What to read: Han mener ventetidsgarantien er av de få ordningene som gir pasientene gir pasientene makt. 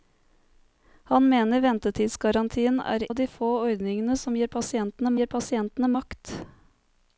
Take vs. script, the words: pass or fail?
pass